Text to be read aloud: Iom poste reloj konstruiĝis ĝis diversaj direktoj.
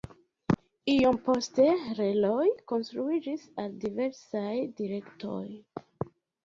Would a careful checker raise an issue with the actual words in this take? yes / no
yes